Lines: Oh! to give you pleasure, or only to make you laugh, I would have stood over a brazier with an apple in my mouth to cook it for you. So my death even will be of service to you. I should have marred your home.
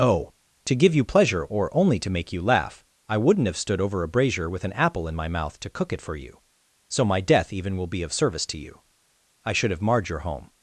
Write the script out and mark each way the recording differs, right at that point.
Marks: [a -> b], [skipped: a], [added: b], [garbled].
Oh! to give you pleasure, or only to make you laugh, I [would -> wouldn't] have stood over a brazier with an apple in my mouth to cook it for you. So my death even will be of service to you. I should have marred your home.